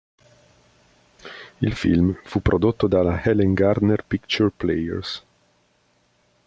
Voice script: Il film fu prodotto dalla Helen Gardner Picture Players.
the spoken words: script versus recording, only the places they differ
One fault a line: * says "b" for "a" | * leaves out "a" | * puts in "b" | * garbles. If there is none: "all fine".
all fine